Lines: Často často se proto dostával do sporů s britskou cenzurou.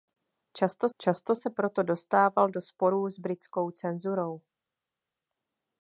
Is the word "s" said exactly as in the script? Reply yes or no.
yes